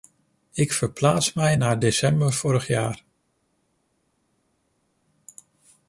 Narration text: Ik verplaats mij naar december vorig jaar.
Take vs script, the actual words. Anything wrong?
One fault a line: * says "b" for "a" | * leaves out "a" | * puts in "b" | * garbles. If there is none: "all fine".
all fine